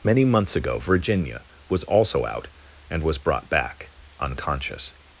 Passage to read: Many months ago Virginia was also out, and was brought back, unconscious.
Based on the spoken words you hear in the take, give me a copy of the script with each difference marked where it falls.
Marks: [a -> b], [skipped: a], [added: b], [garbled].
Many months ago Virginia was also out, and was brought back, unconscious.